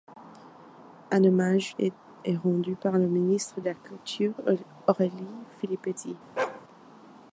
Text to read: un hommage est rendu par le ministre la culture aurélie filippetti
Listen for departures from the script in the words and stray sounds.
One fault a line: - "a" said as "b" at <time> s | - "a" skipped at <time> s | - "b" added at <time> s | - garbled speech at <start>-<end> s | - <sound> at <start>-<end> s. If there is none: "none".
- bark at 6.4-6.6 s